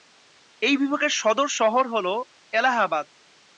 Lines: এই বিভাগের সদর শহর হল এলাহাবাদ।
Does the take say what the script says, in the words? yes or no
yes